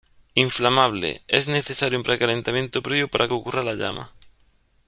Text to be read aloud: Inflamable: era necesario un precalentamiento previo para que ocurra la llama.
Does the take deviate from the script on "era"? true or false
true